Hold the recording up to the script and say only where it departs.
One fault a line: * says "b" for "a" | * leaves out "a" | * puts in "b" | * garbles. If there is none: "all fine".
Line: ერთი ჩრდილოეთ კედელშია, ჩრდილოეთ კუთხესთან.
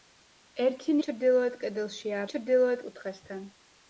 all fine